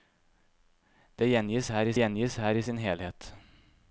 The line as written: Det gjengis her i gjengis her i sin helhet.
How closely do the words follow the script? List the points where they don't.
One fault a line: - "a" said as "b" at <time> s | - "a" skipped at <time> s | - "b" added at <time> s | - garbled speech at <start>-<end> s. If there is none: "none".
none